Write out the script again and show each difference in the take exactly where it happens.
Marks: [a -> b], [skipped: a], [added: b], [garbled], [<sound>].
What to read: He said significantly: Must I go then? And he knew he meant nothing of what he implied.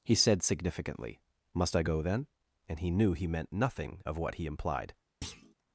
He said significantly: Must I go then? And he knew he meant nothing of what he implied. [thud]